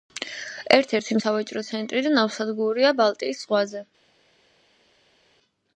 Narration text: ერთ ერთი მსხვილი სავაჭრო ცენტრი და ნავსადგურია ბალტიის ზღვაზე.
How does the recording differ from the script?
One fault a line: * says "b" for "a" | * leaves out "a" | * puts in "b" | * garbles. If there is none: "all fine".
* leaves out "მსხვილი"